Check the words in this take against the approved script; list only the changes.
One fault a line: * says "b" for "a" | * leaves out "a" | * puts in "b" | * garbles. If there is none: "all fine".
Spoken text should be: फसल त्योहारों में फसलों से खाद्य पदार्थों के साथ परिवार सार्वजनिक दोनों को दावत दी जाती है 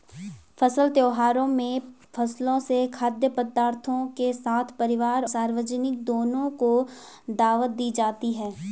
all fine